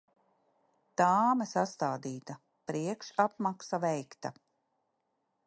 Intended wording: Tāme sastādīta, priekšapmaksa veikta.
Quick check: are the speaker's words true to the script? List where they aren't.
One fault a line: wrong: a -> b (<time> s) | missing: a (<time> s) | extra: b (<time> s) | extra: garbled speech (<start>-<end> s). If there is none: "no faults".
no faults